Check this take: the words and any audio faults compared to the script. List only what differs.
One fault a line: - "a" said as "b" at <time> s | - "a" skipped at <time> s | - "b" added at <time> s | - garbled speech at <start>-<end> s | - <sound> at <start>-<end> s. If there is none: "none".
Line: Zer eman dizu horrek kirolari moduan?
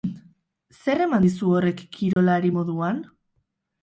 - dropout at 2.1-2.2 s